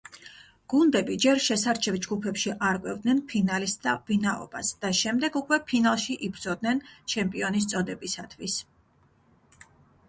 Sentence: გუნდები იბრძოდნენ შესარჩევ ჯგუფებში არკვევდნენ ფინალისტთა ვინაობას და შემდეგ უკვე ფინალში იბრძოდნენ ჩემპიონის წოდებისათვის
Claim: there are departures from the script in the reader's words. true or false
true